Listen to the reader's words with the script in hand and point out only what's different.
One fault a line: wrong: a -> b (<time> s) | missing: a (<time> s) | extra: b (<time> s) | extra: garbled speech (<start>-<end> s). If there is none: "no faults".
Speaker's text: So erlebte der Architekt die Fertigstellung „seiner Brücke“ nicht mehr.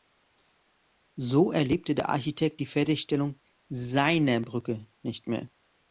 no faults